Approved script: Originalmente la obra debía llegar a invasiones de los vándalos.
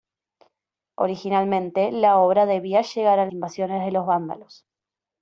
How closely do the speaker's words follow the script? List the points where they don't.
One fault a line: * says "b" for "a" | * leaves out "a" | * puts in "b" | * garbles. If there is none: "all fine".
all fine